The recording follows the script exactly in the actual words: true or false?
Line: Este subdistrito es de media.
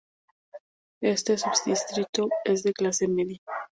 false